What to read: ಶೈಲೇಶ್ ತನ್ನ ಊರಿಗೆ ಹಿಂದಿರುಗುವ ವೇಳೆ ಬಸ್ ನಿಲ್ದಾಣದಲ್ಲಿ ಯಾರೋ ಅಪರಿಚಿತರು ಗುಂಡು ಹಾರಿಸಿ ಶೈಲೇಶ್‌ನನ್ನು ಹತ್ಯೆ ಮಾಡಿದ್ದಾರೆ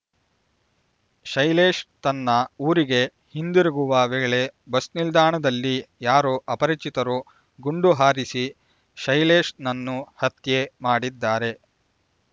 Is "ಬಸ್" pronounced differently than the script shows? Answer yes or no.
no